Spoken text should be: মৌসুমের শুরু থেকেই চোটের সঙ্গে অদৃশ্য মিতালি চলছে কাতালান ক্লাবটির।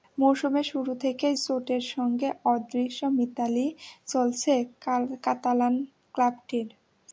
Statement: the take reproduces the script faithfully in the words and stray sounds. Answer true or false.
true